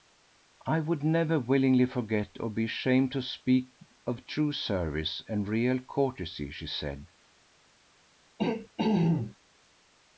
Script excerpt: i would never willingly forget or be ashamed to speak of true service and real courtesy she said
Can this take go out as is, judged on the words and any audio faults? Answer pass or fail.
fail